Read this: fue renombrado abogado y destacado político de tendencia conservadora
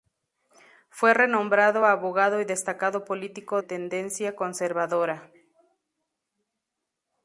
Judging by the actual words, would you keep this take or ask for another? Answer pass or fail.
fail